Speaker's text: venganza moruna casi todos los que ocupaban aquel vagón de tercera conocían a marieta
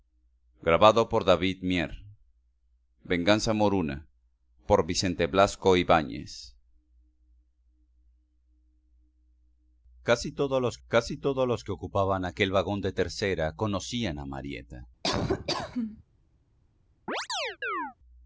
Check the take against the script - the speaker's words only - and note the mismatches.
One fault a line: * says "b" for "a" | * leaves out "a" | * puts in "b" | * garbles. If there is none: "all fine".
* puts in "casi todos los"